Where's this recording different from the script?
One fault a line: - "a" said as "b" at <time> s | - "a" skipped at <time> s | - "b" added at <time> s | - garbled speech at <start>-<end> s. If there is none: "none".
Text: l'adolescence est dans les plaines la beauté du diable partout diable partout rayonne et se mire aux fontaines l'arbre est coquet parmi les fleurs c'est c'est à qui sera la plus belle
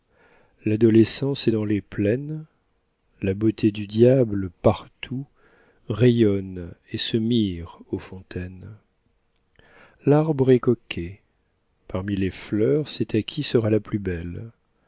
- "diable partout" skipped at 5.3 s
- "c'est" skipped at 13.1 s